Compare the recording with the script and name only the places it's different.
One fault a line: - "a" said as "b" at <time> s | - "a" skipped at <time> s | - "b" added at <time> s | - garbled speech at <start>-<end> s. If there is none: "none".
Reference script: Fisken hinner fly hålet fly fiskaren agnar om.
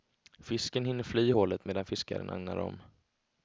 - "fly" said as "medan" at 1.6 s